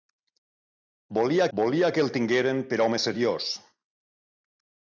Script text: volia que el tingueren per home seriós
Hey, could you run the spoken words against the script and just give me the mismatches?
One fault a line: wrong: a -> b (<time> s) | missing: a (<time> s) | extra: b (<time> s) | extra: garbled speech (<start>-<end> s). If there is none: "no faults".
extra: volia (1.6 s)